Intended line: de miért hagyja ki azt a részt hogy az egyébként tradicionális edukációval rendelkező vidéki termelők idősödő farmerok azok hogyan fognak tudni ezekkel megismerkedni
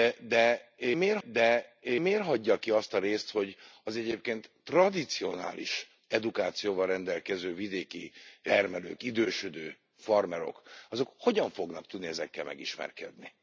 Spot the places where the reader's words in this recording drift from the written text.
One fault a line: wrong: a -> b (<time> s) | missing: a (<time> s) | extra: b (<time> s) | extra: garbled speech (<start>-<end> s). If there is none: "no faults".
extra: de miért (1.2 s)